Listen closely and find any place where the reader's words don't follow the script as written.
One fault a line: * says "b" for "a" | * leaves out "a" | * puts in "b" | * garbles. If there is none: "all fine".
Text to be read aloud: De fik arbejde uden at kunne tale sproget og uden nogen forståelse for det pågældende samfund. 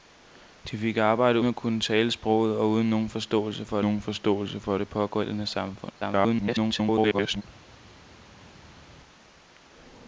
* leaves out "uden"
* puts in "nogen forståelse for"
* garbles